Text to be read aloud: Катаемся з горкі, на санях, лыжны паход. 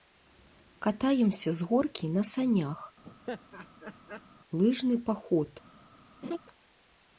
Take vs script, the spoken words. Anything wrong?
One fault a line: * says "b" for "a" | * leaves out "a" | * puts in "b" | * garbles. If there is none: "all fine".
all fine